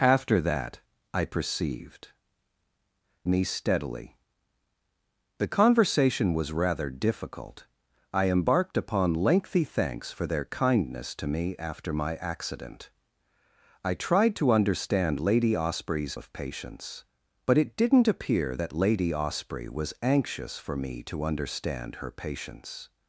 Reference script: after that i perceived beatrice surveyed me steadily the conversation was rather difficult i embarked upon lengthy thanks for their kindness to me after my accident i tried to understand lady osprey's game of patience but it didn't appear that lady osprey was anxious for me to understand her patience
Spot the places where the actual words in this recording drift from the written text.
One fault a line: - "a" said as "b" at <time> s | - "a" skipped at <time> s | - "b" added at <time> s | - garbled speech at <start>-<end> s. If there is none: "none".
- "beatrice surveyed" skipped at 2.1 s
- "game" skipped at 16.1 s